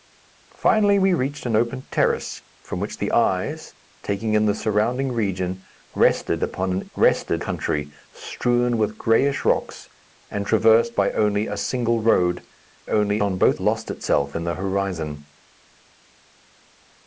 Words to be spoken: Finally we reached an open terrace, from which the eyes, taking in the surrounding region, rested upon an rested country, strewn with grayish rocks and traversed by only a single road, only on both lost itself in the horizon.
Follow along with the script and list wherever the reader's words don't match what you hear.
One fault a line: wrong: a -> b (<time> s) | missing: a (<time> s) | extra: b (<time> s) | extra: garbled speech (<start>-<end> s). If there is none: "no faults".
no faults